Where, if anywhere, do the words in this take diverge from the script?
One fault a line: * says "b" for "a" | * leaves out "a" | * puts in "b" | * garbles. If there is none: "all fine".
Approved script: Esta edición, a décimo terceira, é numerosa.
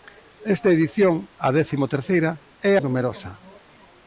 all fine